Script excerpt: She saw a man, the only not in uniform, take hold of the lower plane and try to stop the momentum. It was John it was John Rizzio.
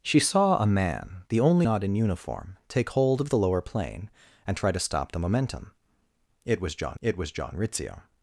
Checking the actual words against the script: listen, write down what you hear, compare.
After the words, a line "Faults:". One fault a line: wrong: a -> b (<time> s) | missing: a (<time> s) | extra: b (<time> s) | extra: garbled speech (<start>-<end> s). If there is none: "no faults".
She saw a man, the only not in uniform, take hold of the lower plane and try to stop the momentum. It was John it was John Rizzio.
Faults:
no faults